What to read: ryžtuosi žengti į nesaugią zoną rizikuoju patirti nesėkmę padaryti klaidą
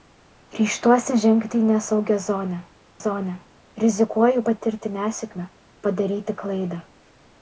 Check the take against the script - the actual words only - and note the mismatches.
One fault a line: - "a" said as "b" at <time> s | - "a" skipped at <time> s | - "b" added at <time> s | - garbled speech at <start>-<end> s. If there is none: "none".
- "zoną" added at 3.0 s